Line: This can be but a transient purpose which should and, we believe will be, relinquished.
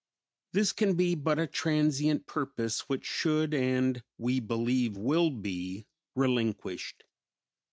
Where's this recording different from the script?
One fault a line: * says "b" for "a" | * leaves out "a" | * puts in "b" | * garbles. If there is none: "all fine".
all fine